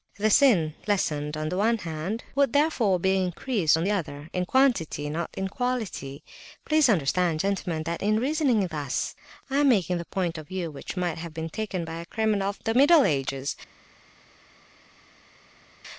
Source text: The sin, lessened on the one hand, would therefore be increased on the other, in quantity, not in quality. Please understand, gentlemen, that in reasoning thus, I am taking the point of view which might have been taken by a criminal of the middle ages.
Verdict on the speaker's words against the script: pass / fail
pass